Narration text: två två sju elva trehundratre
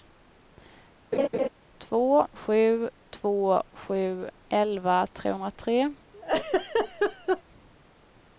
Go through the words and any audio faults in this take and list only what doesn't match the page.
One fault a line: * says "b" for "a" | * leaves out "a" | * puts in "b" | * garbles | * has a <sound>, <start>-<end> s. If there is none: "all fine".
* has a laugh, 1.1-1.5 s
* puts in "sju"
* has a laugh, 6.1-7.4 s